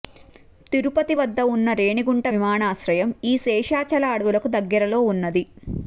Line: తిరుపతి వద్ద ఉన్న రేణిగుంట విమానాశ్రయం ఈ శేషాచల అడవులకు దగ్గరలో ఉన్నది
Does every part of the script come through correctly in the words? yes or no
yes